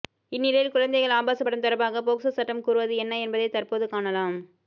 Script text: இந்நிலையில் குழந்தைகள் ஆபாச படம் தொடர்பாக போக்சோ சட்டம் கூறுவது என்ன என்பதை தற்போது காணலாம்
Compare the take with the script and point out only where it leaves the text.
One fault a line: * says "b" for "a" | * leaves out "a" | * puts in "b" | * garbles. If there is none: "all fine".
all fine